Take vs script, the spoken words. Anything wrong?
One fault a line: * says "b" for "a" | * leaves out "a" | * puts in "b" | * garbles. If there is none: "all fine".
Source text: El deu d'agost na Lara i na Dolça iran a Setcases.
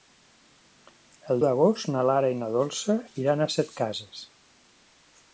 * leaves out "deu"